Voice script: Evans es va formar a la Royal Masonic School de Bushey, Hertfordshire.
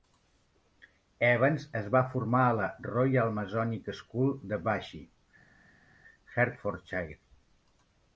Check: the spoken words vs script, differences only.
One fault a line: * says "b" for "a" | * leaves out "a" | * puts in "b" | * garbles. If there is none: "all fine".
all fine